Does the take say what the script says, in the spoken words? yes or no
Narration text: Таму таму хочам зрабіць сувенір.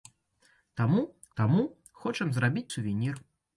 yes